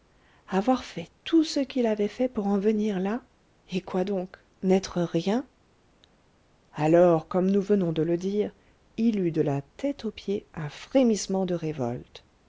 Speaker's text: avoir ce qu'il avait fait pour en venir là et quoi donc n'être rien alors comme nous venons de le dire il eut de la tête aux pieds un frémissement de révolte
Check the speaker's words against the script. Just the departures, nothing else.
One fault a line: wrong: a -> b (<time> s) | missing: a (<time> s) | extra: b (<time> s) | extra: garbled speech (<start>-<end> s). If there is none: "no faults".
extra: fait tout (0.8 s)